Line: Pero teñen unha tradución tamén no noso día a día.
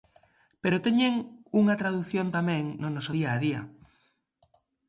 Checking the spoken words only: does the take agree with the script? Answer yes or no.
yes